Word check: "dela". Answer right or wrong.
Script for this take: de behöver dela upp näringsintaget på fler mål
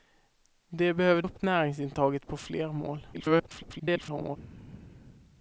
wrong